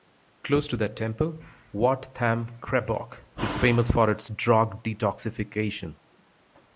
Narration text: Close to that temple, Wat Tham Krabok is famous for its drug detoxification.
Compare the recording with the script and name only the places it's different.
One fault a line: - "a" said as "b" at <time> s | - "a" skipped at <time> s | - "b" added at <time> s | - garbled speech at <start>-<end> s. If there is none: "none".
none